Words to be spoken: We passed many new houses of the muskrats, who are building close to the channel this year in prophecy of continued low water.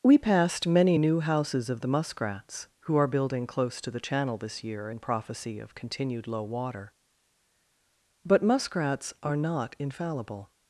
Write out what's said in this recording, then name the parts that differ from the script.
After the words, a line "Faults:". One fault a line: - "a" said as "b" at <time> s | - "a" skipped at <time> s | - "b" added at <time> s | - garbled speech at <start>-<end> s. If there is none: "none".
We passed many new houses of the muskrats, who are building close to the channel this year in prophecy of continued low water. But muskrats are not infallible
Faults:
- "But muskrats are not infallible" added at 8.3 s